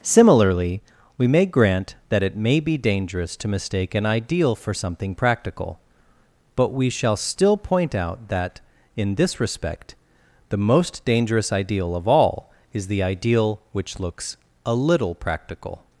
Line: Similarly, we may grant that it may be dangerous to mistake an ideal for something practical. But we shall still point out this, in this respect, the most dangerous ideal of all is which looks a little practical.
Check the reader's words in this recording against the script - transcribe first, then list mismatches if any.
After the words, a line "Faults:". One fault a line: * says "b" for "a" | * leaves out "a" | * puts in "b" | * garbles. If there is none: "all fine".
Similarly, we may grant that it may be dangerous to mistake an ideal for something practical. But we shall still point out that, in this respect, the most dangerous ideal of all is the ideal which looks a little practical.
Faults:
* says "that" for "this"
* puts in "the ideal"